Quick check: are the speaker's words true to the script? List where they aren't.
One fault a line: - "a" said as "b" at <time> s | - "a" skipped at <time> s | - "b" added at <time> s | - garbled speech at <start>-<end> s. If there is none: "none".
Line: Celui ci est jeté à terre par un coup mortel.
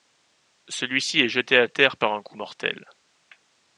none